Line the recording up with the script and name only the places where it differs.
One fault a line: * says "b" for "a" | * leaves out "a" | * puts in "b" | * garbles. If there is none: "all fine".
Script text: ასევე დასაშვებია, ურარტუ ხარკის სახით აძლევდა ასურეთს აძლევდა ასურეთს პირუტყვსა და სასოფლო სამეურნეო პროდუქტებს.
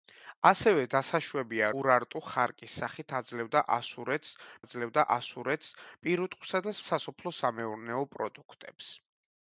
all fine